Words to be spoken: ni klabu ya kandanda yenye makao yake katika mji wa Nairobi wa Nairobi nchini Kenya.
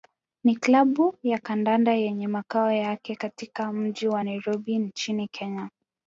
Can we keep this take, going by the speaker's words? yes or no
no